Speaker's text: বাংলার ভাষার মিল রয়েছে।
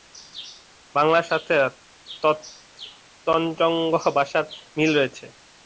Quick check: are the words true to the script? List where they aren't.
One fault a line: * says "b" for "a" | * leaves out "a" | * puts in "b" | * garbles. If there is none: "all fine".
* puts in "সাথে তঞ্চঙ্গ্যা"